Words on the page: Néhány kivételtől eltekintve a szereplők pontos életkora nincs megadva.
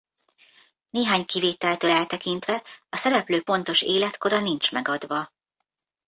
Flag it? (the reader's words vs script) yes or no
no